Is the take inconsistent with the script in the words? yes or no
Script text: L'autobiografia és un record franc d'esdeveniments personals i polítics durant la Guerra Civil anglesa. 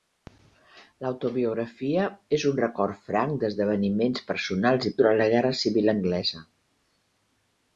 yes